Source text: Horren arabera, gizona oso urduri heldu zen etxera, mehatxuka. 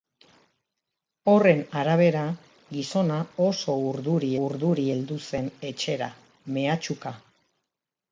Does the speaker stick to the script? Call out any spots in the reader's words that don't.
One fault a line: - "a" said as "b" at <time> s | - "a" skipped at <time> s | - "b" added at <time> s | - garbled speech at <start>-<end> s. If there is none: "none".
- "urduri" added at 4.5 s